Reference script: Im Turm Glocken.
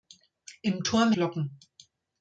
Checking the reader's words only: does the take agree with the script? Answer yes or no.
yes